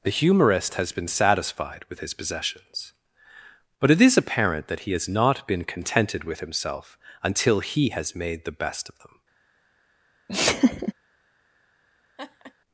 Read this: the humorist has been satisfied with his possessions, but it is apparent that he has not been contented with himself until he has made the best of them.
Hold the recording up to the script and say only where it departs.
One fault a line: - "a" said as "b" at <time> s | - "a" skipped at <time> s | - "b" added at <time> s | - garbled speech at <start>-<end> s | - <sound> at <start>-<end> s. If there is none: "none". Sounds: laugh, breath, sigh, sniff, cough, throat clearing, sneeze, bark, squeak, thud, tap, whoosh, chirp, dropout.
- laugh at 10.3-10.9 s
- laugh at 12.2-12.5 s